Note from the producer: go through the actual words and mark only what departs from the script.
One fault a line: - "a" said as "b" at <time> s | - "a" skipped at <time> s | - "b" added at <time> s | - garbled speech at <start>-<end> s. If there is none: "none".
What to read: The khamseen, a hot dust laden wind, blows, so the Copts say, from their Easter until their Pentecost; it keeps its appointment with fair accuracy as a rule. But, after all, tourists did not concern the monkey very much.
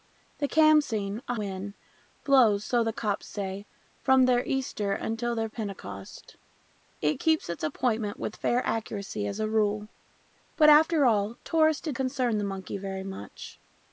- "hot dust laden" skipped at 1.4 s
- "not" skipped at 11.9 s